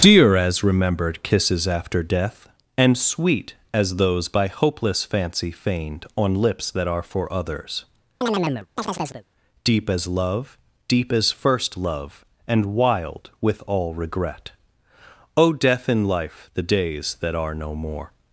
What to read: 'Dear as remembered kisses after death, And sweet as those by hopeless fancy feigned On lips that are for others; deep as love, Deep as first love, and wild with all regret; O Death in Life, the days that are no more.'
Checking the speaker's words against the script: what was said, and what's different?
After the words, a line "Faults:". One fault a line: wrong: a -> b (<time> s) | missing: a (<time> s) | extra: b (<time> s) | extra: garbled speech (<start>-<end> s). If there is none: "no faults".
'Dear as remembered kisses after death, And sweet as those by hopeless fancy feigned On lips that are for others; deep as love, Deep as first love, and wild with all regret; O Death in Life, the days that are no more.'
Faults:
no faults